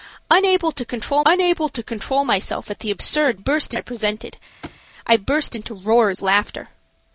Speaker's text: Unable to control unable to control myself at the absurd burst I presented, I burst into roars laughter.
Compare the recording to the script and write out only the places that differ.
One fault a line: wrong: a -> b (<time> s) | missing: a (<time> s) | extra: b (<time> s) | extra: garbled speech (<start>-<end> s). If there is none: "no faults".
no faults